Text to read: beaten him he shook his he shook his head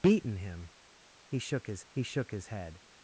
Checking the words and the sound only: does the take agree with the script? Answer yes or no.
yes